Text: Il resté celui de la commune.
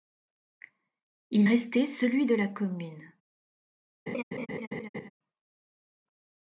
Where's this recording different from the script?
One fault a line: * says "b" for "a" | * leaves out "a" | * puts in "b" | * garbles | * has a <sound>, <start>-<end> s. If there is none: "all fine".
* has a laugh, 4.1-5.1 s